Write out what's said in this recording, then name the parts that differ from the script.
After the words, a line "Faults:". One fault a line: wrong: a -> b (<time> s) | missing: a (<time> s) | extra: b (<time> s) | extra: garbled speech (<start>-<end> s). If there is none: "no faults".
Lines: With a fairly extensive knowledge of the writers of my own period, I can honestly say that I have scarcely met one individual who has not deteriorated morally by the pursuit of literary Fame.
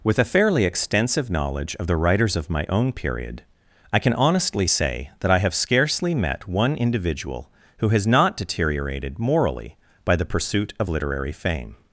With a fairly extensive knowledge of the writers of my own period, I can honestly say that I have scarcely met one individual who has not deteriorated morally by the pursuit of literary Fame.
Faults:
no faults